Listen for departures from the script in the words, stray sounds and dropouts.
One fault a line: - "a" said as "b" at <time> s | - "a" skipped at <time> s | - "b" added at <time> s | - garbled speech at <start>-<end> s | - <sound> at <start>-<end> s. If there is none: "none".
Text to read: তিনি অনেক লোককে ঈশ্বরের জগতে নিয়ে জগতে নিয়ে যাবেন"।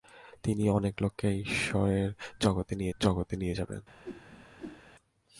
- whoosh at 4.0-4.8 s